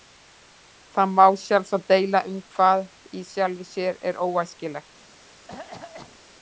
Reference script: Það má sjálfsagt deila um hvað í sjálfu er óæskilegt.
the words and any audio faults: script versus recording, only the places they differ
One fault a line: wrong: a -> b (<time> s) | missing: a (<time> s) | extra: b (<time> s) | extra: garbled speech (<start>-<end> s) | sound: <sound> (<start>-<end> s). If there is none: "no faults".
extra: sér (3.7 s)
sound: cough (5.5-6.2 s)